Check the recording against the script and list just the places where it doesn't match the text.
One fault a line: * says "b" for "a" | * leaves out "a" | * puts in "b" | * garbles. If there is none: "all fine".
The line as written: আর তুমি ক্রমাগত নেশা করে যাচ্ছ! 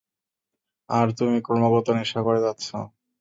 all fine